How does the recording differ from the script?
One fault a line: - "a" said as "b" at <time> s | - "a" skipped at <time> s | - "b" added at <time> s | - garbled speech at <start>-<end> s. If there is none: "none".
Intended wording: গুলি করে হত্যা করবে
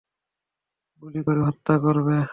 none